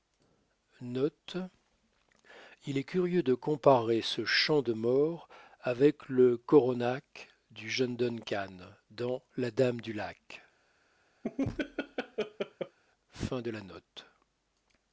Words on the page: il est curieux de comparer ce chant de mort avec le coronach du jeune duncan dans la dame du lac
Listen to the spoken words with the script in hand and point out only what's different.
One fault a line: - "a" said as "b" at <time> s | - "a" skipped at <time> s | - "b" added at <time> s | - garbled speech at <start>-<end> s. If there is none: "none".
none